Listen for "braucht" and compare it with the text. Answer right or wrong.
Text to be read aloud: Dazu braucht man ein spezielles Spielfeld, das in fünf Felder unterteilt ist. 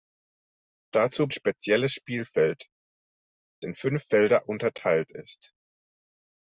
wrong